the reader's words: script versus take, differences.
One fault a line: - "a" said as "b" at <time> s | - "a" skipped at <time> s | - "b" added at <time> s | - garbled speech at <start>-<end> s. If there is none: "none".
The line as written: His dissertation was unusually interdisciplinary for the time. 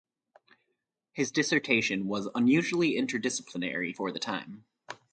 none